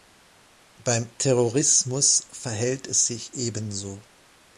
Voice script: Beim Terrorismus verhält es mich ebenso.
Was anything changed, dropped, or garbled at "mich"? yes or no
yes